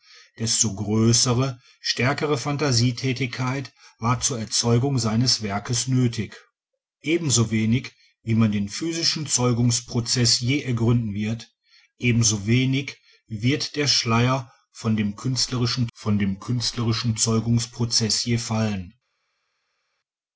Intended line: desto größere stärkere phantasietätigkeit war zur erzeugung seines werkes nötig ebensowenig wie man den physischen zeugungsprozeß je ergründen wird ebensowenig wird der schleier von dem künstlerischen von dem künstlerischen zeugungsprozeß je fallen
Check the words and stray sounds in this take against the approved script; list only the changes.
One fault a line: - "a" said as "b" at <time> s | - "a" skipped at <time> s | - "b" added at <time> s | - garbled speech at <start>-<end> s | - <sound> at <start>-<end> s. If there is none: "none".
none